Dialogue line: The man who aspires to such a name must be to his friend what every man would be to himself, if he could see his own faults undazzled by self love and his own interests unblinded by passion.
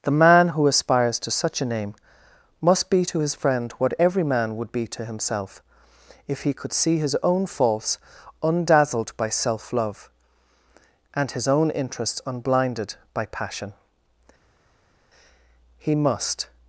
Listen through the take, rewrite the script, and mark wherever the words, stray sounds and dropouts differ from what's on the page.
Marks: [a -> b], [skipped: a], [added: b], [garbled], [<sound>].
The man who aspires to such a name must be to his friend what every man would be to himself, if he could see his own faults undazzled by self love and his own interests unblinded by passion. [added: He must]